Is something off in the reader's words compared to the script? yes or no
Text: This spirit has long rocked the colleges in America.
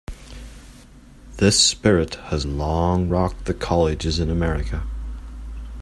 no